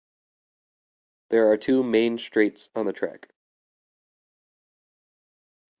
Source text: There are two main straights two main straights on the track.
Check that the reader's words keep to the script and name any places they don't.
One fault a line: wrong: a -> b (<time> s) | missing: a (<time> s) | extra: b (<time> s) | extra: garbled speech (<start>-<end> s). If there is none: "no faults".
missing: two main straights (2.7 s)